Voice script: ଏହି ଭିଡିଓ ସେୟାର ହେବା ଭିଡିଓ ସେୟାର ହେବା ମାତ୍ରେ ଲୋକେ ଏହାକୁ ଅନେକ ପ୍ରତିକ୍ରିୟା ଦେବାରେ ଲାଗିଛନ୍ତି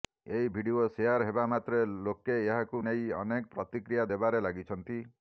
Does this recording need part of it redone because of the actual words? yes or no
yes